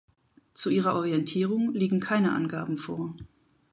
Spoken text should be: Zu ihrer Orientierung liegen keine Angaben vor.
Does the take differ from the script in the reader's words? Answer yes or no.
no